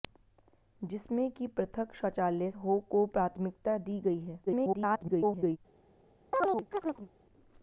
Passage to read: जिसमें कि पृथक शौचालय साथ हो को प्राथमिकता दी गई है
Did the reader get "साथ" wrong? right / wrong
wrong